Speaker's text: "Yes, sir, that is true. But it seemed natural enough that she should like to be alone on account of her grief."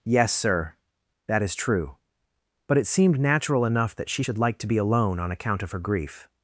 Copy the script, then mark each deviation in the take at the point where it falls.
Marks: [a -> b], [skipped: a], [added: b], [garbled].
"Yes, sir, that is true. But it seemed natural enough that she should like to be alone on account of her grief."